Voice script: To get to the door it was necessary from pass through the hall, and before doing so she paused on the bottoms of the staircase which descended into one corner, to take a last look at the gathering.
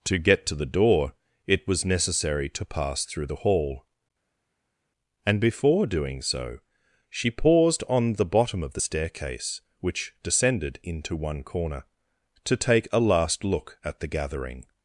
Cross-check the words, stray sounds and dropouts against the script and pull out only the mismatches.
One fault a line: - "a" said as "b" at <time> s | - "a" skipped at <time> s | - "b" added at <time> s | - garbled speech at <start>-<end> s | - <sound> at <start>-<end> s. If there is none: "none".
- "from" said as "to" at 2.5 s
- "bottoms" said as "bottom" at 8.3 s